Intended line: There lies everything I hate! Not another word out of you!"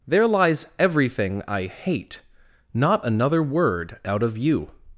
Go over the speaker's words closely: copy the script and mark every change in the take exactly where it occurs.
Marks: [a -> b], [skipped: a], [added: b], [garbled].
There lies everything I hate! Not another word out of you!"